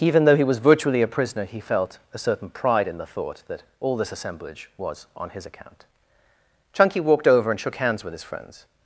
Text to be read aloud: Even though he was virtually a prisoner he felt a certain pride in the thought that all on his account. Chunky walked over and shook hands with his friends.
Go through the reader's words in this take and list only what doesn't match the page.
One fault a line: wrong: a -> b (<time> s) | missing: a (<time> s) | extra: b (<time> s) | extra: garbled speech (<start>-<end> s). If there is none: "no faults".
extra: this assemblage was (4.0 s)